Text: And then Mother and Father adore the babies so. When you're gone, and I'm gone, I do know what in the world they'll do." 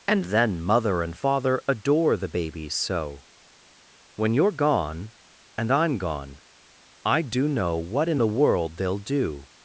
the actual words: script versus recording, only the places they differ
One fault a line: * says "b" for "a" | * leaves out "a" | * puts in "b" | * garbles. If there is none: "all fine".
all fine